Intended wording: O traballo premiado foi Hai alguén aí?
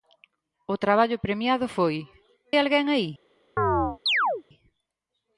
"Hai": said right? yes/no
no